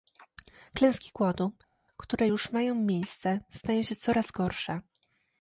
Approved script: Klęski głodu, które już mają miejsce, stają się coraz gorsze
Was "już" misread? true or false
false